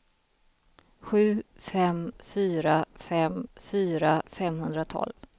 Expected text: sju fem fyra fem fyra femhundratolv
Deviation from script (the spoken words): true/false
false